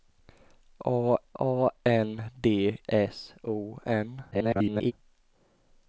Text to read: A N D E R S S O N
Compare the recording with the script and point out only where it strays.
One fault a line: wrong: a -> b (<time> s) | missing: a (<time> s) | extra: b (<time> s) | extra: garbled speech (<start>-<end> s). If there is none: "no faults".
extra: a (1.4 s)
missing: E R S (2.8 s)
extra: garbled speech (4.3-4.9 s)